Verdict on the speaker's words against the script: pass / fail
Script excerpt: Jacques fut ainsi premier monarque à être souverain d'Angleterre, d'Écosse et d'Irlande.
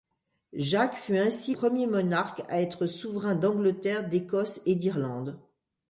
pass